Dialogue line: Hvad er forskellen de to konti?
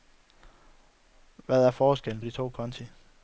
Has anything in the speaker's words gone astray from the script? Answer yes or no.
no